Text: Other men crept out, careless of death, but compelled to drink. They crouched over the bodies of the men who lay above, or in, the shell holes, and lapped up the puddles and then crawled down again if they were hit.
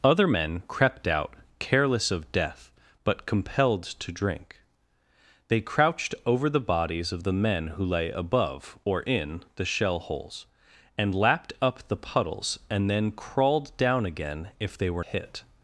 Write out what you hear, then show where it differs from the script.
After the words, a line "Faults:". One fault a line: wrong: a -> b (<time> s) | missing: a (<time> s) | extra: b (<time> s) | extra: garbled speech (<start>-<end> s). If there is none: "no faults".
Other men crept out, careless of death, but compelled to drink. They crouched over the bodies of the men who lay above, or in, the shell holes, and lapped up the puddles and then crawled down again if they were hit.
Faults:
no faults